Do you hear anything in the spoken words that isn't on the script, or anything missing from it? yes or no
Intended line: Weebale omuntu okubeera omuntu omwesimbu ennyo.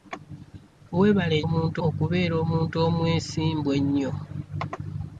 no